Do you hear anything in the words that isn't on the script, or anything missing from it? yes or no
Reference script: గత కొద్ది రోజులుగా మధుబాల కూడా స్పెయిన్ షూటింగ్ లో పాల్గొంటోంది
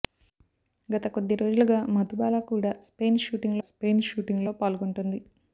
yes